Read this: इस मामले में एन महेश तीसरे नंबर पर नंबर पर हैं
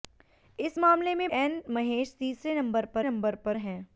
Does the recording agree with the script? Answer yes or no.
yes